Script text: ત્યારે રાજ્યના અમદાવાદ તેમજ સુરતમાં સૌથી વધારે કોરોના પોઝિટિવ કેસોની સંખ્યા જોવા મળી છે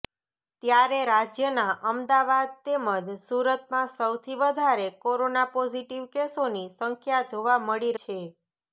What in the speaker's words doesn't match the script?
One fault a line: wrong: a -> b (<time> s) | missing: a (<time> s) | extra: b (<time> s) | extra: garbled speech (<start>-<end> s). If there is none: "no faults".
no faults